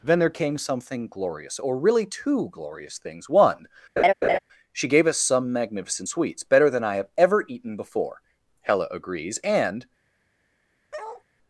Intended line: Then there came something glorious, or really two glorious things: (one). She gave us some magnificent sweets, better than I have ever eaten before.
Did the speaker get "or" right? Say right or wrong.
right